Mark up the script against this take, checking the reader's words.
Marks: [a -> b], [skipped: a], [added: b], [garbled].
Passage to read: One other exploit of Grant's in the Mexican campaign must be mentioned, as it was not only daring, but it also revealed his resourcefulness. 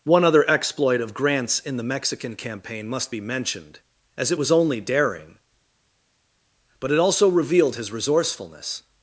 One other exploit of Grant's in the Mexican campaign must be mentioned, as it was [skipped: not] only daring, but it also revealed his resourcefulness.